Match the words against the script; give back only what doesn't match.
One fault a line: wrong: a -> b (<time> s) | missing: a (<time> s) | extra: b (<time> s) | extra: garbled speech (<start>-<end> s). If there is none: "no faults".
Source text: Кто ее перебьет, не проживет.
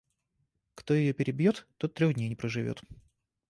extra: тот трех дней (1.8 s)